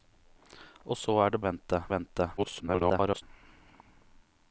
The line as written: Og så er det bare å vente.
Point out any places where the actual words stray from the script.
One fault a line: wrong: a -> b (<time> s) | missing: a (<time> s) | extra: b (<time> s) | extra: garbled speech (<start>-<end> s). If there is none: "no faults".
wrong: bare -> vente (1.4 s)
extra: garbled speech (2.4-3.2 s)